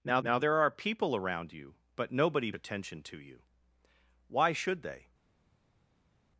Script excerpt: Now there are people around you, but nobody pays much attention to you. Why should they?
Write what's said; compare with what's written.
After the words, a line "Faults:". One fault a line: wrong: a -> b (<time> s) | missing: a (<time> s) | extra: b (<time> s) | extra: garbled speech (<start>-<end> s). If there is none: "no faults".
Now now there are people around you, but nobody attention to you. Why should they?
Faults:
extra: now (0.2 s)
missing: pays much (2.5 s)